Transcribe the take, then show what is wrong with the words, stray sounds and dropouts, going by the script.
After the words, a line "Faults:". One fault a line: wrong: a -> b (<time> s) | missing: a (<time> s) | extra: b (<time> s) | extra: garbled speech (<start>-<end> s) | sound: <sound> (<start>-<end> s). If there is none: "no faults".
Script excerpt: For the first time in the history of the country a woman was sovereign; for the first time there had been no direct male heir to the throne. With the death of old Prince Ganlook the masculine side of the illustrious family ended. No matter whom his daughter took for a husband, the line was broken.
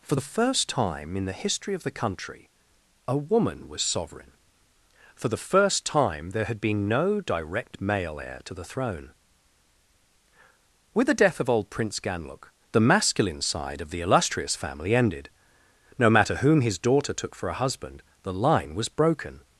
For the first time in the history of the country a woman was sovereign; for the first time there had been no direct male heir to the throne. With the death of old Prince Ganlook the masculine side of the illustrious family ended. No matter whom his daughter took for a husband, the line was broken.
Faults:
no faults